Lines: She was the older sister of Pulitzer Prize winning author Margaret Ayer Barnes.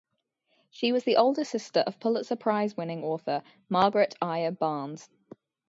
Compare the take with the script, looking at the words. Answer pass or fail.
pass